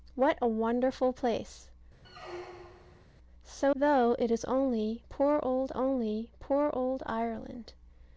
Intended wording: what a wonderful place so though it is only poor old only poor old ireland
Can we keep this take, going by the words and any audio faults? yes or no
no